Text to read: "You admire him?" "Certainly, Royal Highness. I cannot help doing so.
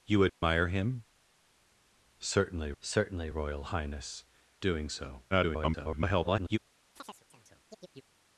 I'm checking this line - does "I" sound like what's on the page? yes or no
no